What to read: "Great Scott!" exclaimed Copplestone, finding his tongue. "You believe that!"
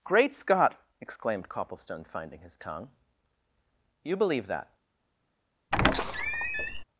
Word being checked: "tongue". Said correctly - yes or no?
yes